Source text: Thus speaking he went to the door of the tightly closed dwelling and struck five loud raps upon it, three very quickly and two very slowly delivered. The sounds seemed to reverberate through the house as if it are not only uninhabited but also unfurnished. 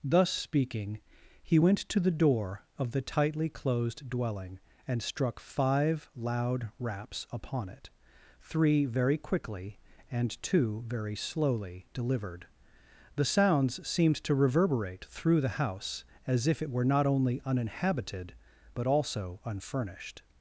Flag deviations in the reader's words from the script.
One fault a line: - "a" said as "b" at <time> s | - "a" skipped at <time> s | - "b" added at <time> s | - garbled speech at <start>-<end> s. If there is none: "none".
- "are" said as "were" at 16.7 s